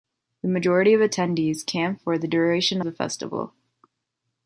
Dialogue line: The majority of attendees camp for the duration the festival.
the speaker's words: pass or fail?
pass